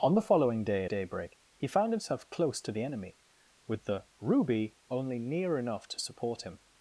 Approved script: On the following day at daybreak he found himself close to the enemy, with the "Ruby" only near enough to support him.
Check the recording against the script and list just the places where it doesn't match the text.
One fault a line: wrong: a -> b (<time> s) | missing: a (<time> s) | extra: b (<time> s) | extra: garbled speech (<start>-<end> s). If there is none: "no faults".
missing: at (0.8 s)